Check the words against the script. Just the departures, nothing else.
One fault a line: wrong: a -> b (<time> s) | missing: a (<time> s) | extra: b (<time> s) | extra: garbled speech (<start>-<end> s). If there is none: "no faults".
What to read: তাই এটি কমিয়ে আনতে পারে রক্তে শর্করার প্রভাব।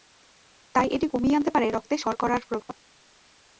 no faults